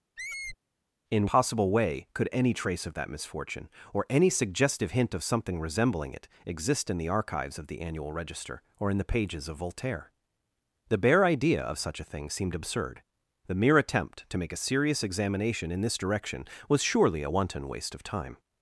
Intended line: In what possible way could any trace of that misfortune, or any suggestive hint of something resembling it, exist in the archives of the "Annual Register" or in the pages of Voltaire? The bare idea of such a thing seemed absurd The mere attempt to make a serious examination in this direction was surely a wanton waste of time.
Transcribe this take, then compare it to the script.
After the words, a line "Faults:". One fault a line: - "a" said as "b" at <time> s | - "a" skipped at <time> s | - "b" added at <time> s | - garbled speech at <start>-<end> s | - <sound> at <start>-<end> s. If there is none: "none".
In possible way could any trace of that misfortune, or any suggestive hint of something resembling it, exist in the archives of the "Annual Register" or in the pages of Voltaire? The bare idea of such a thing seemed absurd The mere attempt to make a serious examination in this direction was surely a wanton waste of time.
Faults:
- squeak at 0.2-0.6 s
- "what" skipped at 1.3 s